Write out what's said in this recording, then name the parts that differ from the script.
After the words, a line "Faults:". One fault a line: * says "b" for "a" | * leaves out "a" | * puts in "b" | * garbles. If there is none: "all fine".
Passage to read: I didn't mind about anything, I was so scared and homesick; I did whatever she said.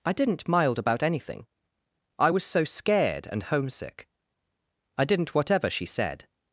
I didn't mild about anything, I was so scared and homesick; I didn't whatever she said.
Faults:
* says "mild" for "mind"
* says "didn't" for "did"